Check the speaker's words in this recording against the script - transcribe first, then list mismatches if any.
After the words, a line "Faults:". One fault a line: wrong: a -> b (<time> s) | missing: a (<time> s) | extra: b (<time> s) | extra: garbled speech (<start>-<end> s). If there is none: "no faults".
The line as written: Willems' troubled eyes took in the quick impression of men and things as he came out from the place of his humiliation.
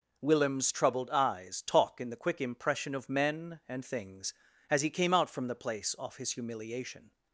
Willems' troubled eyes talk in the quick impression of men and things as he came out from the place off his humiliation.
Faults:
wrong: took -> talk (1.6 s)
wrong: of -> off (6.0 s)